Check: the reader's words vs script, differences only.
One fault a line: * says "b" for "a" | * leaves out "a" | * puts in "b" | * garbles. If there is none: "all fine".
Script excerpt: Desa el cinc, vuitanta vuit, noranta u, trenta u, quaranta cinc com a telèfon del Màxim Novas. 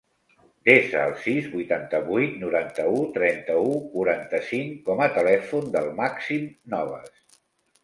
* says "sis" for "cinc"